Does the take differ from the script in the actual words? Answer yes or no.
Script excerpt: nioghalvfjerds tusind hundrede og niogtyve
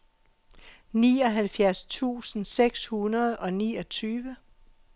yes